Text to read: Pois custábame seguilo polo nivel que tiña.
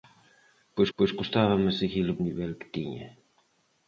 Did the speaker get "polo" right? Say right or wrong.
wrong